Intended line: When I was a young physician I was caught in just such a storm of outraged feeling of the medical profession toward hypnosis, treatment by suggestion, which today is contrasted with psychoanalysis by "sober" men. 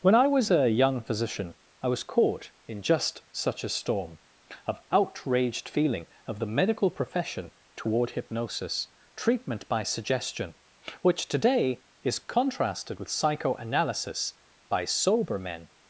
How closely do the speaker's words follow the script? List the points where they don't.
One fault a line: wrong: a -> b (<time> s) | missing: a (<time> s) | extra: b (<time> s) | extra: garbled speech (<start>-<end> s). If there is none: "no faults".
no faults